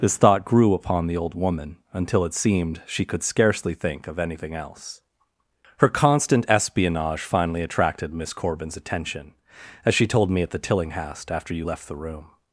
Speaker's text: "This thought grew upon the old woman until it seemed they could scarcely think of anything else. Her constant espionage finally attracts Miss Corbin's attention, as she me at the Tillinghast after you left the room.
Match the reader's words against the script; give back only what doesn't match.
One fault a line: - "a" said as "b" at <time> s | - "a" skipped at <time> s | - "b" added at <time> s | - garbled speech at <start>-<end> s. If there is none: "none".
- "they" said as "she" at 2.9 s
- "attracts" said as "attracted" at 7.6 s
- "told" added at 10.1 s